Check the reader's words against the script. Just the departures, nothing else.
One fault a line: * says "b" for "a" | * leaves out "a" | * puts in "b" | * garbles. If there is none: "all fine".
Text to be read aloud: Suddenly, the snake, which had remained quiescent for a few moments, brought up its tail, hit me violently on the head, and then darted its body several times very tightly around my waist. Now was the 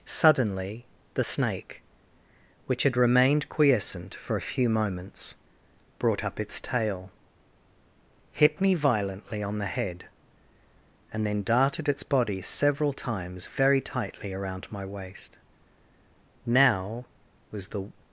all fine